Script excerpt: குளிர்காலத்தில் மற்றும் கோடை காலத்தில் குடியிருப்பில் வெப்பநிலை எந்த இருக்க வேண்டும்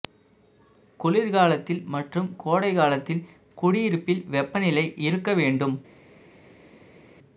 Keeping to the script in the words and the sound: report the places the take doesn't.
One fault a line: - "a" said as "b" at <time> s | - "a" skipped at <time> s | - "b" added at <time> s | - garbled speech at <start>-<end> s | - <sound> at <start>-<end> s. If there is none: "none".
- "எந்த" skipped at 4.8 s